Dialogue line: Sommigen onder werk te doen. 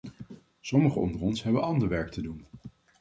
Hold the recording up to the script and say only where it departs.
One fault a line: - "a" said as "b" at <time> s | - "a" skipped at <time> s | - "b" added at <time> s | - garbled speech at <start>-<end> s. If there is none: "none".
- "ons hebben ander" added at 1.2 s